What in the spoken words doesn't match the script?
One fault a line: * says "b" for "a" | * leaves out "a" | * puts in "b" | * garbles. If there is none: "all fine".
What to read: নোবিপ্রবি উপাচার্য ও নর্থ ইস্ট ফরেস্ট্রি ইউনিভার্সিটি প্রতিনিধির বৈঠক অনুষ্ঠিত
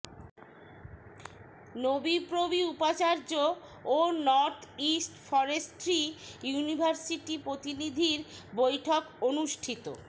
all fine